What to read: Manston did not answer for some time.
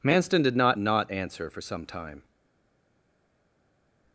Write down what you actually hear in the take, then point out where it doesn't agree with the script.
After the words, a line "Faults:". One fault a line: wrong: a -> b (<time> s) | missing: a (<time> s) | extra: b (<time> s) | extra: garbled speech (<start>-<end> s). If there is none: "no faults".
Manston did not not answer for some time.
Faults:
extra: not (0.8 s)